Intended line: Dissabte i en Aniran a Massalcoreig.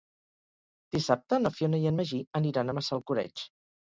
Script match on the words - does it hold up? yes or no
no